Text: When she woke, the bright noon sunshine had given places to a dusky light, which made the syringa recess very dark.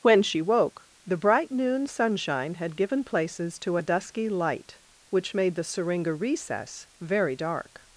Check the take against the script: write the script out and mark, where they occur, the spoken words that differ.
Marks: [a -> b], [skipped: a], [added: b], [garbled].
When she woke, the bright noon sunshine had given places to a dusky light, which made the syringa recess very dark.